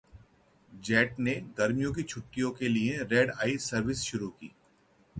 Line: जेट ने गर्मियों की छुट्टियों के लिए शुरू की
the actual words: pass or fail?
fail